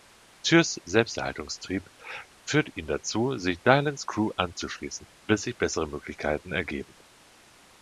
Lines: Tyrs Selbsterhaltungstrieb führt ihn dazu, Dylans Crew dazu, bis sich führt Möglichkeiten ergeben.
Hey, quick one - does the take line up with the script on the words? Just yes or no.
no